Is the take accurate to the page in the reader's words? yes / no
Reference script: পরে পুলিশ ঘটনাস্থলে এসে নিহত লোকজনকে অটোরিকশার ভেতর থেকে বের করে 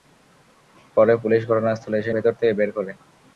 no